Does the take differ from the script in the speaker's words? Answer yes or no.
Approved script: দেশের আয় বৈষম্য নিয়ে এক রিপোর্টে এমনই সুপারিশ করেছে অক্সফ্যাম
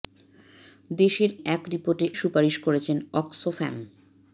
yes